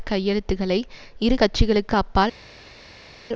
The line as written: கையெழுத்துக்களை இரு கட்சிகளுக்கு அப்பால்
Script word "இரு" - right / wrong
right